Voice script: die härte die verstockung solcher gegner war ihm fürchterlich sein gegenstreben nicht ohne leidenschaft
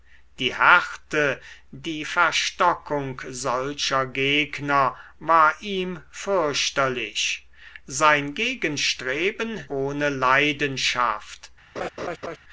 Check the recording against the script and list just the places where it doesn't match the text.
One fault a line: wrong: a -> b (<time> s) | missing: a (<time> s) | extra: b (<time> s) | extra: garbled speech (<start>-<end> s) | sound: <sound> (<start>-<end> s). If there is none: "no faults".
missing: nicht (9.7 s)
sound: laugh (11.8-12.4 s)